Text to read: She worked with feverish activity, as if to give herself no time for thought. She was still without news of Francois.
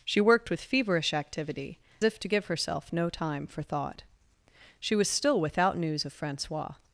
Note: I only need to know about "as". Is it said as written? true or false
false